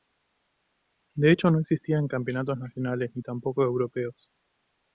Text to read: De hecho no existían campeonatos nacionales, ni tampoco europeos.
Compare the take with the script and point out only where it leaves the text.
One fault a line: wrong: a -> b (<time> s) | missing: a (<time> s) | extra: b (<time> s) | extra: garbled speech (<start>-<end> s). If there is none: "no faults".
no faults